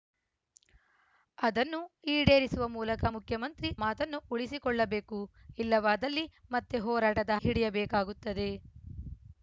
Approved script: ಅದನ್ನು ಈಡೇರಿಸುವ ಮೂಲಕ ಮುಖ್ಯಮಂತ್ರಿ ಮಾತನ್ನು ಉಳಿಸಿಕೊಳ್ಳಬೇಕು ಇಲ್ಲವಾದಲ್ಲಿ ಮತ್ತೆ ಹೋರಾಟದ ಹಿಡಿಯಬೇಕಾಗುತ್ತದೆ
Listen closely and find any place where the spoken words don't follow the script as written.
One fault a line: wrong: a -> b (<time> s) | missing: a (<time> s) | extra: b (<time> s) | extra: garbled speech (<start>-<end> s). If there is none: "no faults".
no faults